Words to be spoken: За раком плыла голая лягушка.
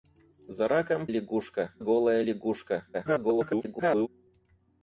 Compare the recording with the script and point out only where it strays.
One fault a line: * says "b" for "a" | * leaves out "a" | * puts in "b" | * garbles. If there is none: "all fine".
* says "лягушка" for "плыла"
* garbles